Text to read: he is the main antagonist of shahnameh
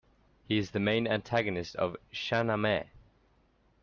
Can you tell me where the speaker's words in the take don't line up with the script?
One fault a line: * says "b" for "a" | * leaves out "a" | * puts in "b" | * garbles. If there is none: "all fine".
all fine